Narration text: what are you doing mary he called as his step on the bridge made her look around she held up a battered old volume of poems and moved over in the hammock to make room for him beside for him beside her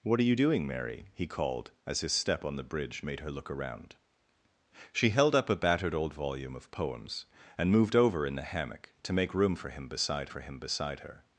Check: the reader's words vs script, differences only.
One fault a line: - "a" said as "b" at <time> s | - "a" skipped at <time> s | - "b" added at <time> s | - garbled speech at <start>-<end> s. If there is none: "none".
none